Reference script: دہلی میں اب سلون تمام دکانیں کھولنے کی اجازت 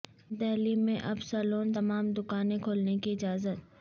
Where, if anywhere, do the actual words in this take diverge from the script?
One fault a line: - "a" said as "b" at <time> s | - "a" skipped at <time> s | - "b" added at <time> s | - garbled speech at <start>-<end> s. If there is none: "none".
none